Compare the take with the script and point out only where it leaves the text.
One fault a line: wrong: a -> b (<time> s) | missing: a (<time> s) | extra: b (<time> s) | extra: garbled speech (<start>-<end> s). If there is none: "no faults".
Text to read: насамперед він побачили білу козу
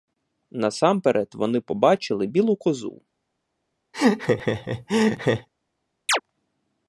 wrong: він -> вони (1.4 s)